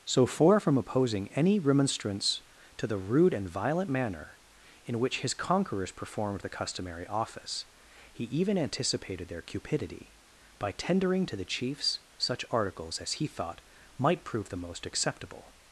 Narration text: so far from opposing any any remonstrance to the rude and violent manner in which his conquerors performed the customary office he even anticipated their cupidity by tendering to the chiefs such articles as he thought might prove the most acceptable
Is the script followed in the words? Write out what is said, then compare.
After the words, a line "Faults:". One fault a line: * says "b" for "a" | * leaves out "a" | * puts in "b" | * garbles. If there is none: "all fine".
so far from opposing any remonstrance to the rude and violent manner in which his conquerors performed the customary office he even anticipated their cupidity by tendering to the chiefs such articles as he thought might prove the most acceptable
Faults:
* leaves out "any"